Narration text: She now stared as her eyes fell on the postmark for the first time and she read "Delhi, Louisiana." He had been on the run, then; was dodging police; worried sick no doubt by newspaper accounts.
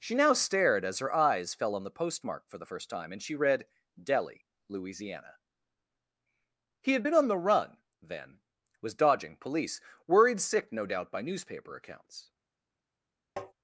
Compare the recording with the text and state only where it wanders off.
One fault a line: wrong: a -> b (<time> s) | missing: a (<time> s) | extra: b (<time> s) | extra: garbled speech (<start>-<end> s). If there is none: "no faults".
no faults